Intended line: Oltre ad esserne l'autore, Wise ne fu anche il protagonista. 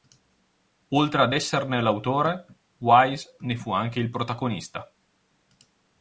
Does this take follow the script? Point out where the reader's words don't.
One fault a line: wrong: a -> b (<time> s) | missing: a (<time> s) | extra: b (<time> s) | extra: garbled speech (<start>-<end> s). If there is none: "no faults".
no faults